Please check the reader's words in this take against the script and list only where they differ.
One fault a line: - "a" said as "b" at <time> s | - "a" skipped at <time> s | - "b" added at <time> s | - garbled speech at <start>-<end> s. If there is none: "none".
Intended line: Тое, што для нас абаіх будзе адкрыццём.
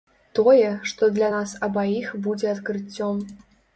none